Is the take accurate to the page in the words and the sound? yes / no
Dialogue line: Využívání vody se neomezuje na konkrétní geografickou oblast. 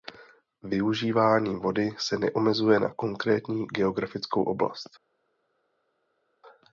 yes